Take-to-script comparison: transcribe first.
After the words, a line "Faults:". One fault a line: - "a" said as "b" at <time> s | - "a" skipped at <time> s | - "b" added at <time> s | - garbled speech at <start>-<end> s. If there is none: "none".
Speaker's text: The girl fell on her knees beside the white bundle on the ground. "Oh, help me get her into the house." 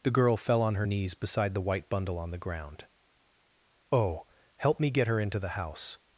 The girl fell on her knees beside the white bundle on the ground. "Oh, help me get her into the house."
Faults:
none